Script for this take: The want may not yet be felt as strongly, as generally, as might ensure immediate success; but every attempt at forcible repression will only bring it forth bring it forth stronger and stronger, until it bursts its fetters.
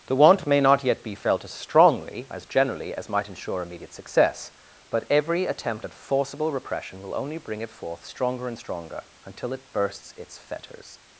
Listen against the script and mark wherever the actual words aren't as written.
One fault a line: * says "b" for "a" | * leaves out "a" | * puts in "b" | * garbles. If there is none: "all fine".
* leaves out "bring it forth"